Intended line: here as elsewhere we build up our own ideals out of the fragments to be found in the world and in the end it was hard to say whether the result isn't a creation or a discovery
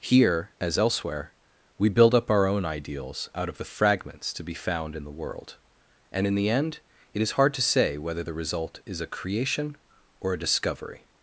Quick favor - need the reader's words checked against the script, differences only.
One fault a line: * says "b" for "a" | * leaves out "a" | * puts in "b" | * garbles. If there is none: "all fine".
* says "is" for "was"
* says "is" for "isn't"